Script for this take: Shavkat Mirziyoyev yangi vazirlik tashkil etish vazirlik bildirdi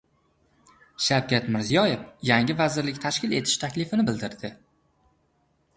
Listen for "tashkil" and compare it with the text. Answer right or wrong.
right